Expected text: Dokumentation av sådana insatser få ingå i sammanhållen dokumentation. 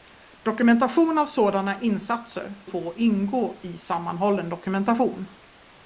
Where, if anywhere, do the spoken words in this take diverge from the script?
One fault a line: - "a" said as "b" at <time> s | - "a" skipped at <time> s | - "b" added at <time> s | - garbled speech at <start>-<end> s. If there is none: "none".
none